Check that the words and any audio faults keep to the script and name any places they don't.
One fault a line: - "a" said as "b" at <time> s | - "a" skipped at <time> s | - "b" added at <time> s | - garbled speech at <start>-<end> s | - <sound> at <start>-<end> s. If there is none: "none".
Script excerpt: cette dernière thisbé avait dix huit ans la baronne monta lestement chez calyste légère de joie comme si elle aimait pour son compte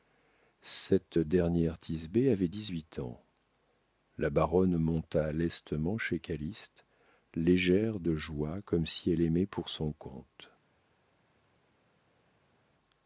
none